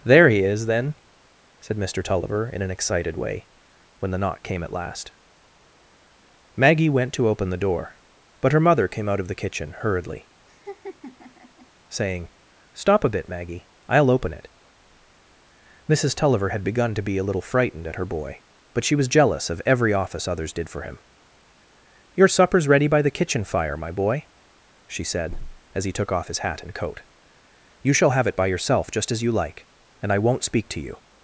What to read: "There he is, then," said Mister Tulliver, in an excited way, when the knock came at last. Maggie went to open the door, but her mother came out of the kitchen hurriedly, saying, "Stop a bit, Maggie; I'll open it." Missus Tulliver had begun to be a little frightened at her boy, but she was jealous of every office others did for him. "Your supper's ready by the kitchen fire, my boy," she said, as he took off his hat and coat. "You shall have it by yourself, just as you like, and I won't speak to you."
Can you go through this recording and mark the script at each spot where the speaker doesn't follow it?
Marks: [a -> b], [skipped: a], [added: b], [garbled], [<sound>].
"There he is, then," said Mister Tulliver, in an excited way, when the knock came at last. Maggie went to open the door, but her mother came out of the kitchen hurriedly, [laugh] saying, "Stop a bit, Maggie; I'll open it." Missus Tulliver had begun to be a little frightened at her boy, but she was jealous of every office others did for him. "Your supper's ready by the kitchen fire, my boy," she said, as he took off his hat and coat. "You shall have it by yourself, just as you like, and I won't speak to you."